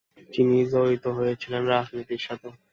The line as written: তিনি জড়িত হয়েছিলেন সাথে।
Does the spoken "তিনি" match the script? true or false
true